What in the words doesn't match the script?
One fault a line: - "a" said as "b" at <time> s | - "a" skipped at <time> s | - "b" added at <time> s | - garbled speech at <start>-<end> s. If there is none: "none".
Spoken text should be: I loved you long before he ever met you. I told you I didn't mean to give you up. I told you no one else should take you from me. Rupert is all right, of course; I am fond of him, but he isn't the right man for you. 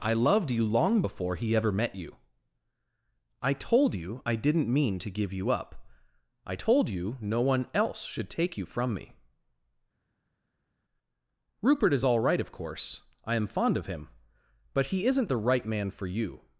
none